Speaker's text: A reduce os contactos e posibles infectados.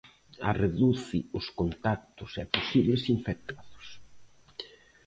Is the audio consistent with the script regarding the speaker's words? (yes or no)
yes